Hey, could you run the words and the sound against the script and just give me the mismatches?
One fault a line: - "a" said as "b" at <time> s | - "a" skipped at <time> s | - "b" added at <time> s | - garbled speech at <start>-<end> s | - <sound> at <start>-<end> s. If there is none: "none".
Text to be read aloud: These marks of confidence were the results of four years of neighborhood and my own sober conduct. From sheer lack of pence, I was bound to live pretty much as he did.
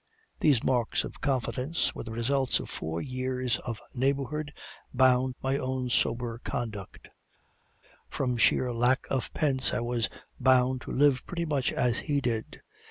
- "and" said as "bound" at 4.9 s